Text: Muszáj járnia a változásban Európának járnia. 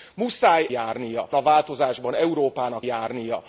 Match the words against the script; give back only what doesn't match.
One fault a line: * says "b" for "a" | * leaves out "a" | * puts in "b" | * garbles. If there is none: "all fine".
all fine